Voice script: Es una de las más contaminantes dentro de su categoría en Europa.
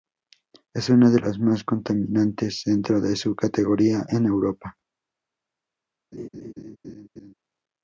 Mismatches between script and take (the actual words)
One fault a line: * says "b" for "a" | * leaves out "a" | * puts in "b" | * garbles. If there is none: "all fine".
all fine